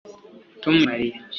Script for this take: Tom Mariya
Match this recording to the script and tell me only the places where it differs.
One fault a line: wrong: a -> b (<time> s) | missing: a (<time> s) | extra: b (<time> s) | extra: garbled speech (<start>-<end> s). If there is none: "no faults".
no faults